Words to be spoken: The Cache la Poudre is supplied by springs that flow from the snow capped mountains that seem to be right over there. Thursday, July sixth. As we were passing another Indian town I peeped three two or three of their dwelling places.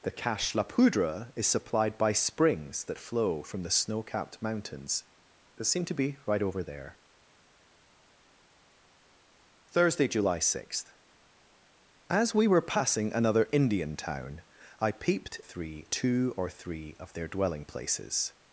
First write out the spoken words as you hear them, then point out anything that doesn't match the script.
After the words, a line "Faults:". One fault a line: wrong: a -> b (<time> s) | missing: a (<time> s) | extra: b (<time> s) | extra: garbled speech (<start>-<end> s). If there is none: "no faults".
The Cache la Poudre is supplied by springs that flow from the snow capped mountains that seem to be right over there. Thursday, July sixth. As we were passing another Indian town I peeped three two or three of their dwelling places.
Faults:
no faults